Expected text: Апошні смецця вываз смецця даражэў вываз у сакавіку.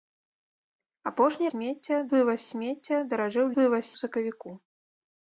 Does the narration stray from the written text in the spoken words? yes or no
no